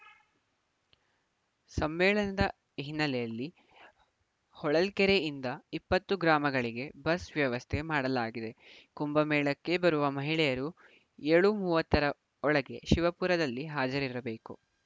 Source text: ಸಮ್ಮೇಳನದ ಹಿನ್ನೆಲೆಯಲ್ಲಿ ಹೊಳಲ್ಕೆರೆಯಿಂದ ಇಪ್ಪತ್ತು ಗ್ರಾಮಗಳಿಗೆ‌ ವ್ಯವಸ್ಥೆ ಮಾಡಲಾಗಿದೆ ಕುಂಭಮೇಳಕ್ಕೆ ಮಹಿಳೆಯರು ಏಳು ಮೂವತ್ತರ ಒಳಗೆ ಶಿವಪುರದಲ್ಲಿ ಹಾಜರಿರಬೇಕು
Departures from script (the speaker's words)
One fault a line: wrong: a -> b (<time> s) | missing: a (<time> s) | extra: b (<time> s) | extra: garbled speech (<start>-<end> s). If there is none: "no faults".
extra: ಬಸ್ (7.0 s)
extra: ಬರುವ (9.8 s)